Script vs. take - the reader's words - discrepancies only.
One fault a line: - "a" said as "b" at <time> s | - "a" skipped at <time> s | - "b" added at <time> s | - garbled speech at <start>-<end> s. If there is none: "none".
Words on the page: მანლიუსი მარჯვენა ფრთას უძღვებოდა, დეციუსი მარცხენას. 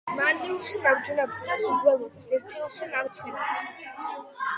none